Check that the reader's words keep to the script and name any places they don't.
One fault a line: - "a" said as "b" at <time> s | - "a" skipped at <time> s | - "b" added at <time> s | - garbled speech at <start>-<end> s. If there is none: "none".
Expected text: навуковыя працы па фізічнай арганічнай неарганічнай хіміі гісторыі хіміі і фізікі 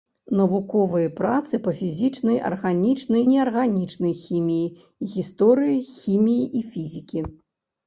none